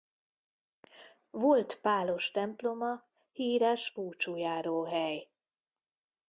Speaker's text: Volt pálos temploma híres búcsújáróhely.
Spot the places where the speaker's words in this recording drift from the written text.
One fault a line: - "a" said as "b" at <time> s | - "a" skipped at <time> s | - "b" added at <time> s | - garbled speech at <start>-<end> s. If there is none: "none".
none